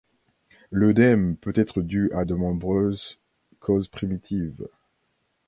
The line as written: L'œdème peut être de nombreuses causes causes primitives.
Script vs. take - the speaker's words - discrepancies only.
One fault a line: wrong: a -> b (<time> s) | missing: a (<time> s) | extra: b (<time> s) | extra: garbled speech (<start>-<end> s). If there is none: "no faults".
extra: dû à (1.8 s)
missing: causes (3.9 s)